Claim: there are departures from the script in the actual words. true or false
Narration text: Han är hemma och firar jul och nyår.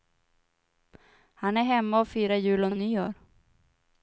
true